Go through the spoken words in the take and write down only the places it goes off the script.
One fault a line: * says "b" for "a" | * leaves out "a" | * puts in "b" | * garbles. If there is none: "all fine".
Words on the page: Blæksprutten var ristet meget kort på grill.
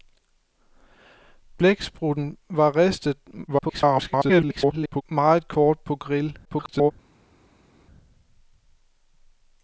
* garbles
* garbles